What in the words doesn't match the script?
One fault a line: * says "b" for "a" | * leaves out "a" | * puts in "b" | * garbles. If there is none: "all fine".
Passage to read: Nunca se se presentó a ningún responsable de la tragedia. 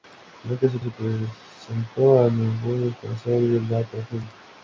all fine